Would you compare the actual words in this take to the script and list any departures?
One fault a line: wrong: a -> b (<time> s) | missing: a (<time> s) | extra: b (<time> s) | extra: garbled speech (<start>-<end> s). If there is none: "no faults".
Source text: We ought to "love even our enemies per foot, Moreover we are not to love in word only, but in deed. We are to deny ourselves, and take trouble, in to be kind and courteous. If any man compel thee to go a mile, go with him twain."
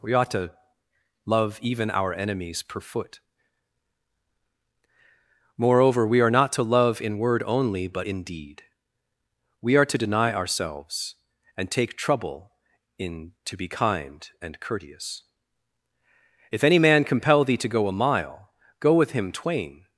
no faults